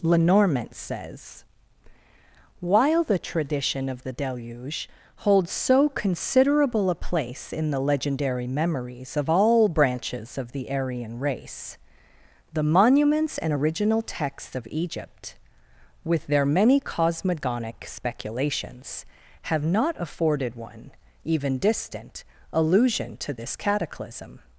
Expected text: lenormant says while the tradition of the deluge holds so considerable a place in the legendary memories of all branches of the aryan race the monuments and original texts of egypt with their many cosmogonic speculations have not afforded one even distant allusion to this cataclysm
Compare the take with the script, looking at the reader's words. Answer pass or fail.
pass